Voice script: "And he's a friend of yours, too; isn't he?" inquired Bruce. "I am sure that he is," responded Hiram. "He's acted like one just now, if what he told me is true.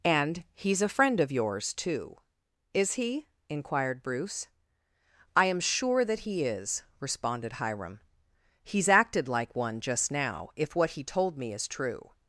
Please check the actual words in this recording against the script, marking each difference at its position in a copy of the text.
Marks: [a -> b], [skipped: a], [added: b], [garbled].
"And he's a friend of yours, too; [isn't -> is] he?" inquired Bruce. "I am sure that he is," responded Hiram. "He's acted like one just now, if what he told me is true.